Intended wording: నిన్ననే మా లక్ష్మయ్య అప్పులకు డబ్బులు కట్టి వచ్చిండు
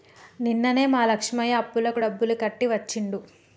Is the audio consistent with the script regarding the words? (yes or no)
yes